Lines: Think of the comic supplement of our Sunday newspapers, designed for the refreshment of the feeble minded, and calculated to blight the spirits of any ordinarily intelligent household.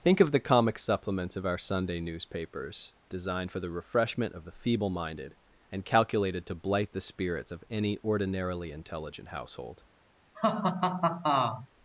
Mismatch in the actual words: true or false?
true